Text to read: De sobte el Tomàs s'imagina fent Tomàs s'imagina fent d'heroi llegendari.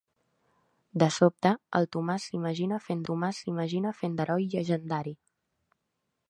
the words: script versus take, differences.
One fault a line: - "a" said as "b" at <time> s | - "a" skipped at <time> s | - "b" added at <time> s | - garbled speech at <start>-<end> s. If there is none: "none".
none